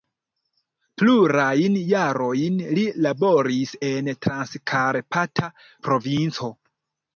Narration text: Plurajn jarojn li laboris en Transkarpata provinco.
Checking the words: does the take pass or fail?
pass